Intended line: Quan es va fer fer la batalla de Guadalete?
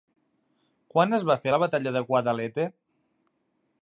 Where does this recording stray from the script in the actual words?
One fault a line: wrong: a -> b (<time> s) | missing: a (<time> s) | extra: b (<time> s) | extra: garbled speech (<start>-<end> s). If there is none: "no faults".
missing: fer (1.5 s)